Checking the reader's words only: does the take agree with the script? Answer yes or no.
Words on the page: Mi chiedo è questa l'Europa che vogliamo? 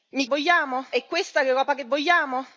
no